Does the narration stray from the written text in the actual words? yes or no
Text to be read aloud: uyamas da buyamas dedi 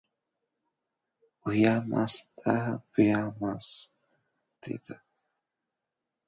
no